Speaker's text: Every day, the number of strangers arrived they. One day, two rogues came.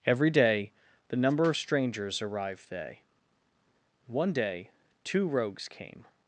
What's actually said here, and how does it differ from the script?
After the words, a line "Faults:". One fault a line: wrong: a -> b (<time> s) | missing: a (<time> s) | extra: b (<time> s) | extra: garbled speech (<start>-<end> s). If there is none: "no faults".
Every day, the number of strangers arrived they. One day, two rogues came.
Faults:
no faults